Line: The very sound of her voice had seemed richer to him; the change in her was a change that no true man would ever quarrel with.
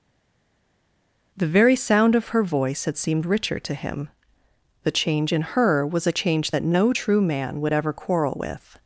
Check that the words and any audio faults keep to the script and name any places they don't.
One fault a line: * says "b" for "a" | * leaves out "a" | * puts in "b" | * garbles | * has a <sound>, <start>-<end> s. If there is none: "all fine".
all fine